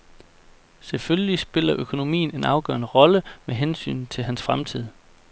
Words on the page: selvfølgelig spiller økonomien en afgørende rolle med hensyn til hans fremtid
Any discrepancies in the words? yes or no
no